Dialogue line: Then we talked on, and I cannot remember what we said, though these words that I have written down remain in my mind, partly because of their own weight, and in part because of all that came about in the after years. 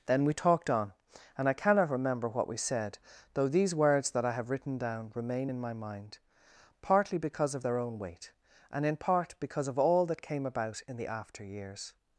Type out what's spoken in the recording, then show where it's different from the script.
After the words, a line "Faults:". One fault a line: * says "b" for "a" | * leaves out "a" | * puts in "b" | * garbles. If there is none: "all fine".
Then we talked on, and I cannot remember what we said, though these words that I have written down remain in my mind, partly because of their own weight, and in part because of all that came about in the after years.
Faults:
all fine